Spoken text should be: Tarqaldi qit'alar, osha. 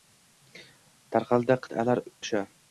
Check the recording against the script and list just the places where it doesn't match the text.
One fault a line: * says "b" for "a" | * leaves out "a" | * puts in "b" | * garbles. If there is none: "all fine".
all fine